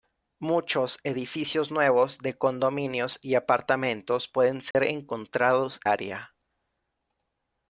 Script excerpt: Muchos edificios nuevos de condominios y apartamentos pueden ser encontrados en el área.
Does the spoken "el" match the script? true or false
false